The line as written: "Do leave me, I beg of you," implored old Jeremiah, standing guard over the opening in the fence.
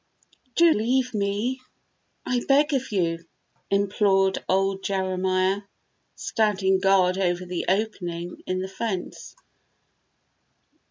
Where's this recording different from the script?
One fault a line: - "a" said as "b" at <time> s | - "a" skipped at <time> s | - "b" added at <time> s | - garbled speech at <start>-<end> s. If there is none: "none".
none